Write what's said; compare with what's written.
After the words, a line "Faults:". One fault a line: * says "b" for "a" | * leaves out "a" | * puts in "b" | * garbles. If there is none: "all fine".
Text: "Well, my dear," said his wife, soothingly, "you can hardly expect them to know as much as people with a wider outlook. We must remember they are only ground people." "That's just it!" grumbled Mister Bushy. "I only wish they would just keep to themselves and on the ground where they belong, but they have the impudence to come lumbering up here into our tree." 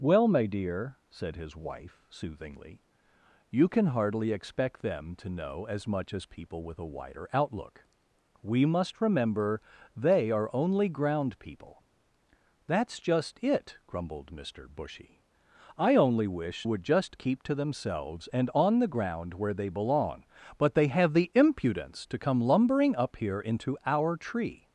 "Well, my dear," said his wife, soothingly, "you can hardly expect them to know as much as people with a wider outlook. We must remember they are only ground people." "That's just it!" grumbled Mister Bushy. "I only wish would just keep to themselves and on the ground where they belong, but they have the impudence to come lumbering up here into our tree."
Faults:
* leaves out "they"